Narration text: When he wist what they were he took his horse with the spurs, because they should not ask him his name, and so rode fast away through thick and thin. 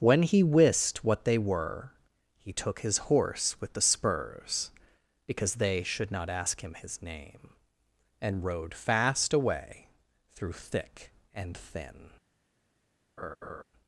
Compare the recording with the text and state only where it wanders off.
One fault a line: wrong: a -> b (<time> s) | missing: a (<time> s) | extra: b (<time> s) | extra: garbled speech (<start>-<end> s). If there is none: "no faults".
missing: so (8.4 s)